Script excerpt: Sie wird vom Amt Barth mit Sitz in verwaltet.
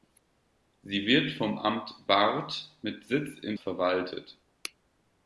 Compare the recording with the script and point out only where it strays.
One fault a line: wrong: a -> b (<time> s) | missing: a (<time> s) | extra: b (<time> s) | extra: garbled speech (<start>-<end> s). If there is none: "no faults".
no faults